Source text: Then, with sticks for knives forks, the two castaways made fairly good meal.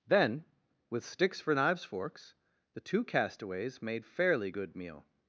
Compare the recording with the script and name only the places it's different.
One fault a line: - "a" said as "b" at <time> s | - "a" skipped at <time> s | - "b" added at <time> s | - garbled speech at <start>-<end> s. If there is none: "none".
none